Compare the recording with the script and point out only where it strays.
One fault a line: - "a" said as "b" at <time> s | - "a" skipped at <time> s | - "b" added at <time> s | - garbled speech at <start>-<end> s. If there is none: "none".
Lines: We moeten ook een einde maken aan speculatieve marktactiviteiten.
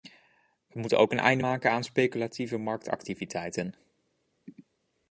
none